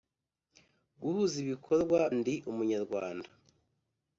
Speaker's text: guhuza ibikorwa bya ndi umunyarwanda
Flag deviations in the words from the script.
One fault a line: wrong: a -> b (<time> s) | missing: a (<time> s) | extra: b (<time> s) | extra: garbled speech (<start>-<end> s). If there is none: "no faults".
missing: bya (2.0 s)